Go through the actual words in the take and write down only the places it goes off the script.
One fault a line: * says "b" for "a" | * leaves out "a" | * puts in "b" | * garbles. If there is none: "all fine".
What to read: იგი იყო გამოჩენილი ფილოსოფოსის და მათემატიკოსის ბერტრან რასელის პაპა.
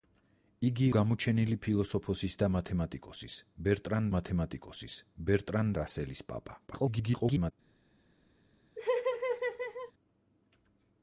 * leaves out "იყო"
* puts in "მათემატიკოსის ბერტრან"
* garbles